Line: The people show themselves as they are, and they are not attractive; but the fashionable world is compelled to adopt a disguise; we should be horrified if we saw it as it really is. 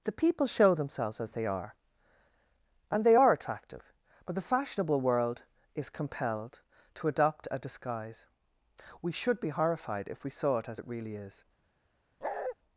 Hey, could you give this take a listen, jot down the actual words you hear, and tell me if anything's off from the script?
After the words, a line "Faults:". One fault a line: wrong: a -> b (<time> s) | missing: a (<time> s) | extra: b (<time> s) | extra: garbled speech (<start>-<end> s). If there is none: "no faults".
The people show themselves as they are, and they are attractive; but the fashionable world is compelled to adopt a disguise; we should be horrified if we saw it as it really is.
Faults:
missing: not (3.3 s)